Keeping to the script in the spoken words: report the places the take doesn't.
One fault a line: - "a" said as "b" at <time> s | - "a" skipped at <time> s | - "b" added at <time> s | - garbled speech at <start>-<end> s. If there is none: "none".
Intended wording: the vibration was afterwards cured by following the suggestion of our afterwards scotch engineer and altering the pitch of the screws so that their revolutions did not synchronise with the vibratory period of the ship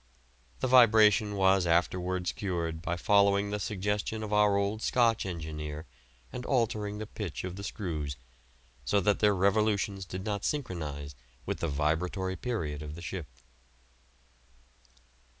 - "afterwards" said as "old" at 4.6 s